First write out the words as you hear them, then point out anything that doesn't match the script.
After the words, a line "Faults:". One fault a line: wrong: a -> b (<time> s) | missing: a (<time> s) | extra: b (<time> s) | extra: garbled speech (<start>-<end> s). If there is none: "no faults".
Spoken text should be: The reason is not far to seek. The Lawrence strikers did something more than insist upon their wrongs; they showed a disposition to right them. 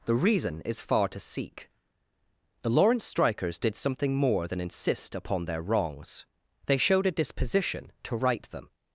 The reason is far to seek. The Lawrence strikers did something more than insist upon their wrongs; they showed a disposition to right them.
Faults:
missing: not (0.8 s)